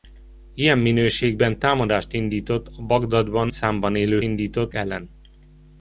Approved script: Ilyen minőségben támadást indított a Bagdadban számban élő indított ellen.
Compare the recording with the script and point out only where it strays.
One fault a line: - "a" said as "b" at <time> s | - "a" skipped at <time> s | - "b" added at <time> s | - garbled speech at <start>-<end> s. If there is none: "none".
none